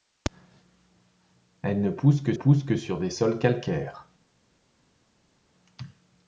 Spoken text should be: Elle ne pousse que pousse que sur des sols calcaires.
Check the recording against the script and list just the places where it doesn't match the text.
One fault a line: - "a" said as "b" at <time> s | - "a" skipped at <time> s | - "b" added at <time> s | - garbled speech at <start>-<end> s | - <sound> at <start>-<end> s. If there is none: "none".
none